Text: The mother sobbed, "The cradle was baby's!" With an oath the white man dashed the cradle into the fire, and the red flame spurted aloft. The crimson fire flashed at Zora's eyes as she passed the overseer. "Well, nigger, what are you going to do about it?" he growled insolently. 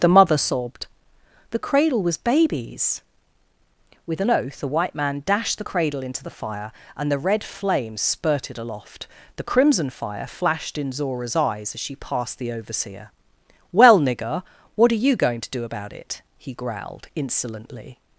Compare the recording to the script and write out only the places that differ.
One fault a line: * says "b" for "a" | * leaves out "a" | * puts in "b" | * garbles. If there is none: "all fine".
* says "in" for "at"